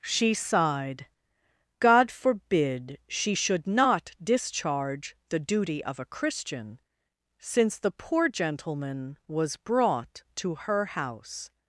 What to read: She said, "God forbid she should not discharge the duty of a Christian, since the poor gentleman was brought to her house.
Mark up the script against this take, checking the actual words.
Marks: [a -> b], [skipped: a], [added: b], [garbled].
She [said, -> sighed] "God forbid she should not discharge the duty of a Christian, since the poor gentleman was brought to her house.